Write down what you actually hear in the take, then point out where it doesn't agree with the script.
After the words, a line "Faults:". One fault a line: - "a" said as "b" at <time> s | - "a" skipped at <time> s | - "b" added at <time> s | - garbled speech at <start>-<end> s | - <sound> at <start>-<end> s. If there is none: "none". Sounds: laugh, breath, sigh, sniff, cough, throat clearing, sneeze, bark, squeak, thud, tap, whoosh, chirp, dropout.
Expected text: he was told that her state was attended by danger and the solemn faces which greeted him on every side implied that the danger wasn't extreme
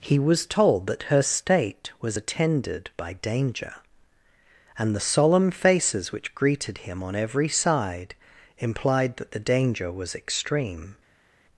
he was told that her state was attended by danger and the solemn faces which greeted him on every side implied that the danger was extreme
Faults:
- "wasn't" said as "was" at 9.9 s